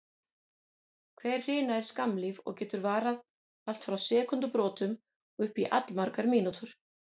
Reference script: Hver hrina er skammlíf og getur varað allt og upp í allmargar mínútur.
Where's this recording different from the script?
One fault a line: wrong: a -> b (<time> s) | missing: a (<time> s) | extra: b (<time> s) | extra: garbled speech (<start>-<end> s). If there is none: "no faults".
extra: frá sekúndubrotum (3.9 s)